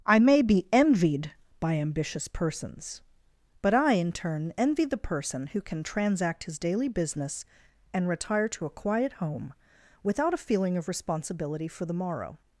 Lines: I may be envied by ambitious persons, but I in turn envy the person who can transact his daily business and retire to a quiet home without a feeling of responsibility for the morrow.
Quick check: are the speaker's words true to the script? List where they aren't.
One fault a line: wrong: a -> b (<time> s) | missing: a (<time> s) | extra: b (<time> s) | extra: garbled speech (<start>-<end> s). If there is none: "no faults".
no faults